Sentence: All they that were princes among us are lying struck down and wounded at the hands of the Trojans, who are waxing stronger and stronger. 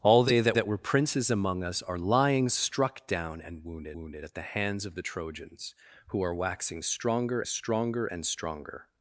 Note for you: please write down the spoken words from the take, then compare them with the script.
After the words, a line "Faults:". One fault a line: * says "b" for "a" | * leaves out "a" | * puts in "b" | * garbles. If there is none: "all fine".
All they that that were princes among us are lying struck down and wounded wounded at the hands of the Trojans, who are waxing stronger stronger and stronger.
Faults:
* puts in "that"
* puts in "wounded"
* puts in "stronger"